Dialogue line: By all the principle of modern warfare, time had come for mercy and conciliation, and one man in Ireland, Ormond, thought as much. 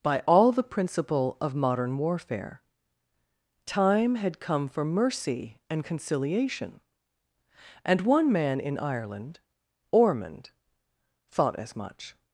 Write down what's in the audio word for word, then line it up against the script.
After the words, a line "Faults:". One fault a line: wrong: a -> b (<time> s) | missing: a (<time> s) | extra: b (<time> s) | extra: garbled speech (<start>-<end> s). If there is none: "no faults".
By all the principle of modern warfare, time had come for mercy and conciliation, and one man in Ireland, Ormond, thought as much.
Faults:
no faults